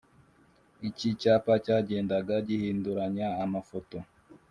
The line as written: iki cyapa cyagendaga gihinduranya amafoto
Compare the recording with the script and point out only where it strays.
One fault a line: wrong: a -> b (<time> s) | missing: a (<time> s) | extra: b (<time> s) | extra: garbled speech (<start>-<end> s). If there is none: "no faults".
no faults